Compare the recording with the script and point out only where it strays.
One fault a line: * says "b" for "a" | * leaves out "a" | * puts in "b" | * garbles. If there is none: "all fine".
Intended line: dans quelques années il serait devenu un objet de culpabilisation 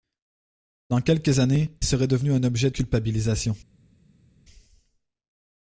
* leaves out "il"
* leaves out "de"